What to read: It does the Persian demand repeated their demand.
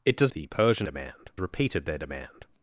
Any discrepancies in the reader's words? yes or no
no